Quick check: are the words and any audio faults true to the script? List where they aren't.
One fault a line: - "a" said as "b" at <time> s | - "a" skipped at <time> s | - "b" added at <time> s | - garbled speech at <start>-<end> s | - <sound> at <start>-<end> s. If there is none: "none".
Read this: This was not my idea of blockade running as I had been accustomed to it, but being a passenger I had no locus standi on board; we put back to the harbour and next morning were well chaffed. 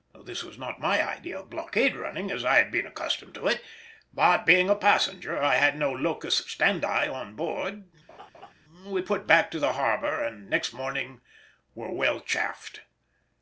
- laugh at 8.1-8.5 s